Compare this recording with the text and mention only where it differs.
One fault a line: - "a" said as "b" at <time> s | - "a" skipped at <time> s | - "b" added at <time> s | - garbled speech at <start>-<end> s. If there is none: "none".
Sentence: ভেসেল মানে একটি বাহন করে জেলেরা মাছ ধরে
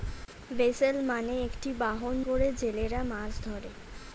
none